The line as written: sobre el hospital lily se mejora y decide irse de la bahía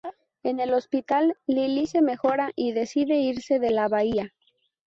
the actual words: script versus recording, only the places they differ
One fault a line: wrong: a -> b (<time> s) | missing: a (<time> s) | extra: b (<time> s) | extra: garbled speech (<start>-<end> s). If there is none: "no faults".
wrong: sobre -> en (0.4 s)